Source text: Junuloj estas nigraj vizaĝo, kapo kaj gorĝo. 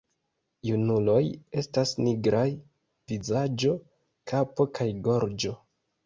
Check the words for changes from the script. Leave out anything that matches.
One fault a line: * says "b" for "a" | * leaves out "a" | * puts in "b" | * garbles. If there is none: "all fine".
all fine